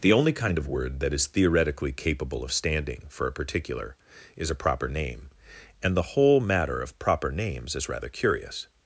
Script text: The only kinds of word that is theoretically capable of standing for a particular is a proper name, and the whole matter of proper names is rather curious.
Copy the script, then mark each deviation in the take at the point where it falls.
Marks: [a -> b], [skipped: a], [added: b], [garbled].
The only [kinds -> kind] of word that is theoretically capable of standing for a particular is a proper name, and the whole matter of proper names is rather curious.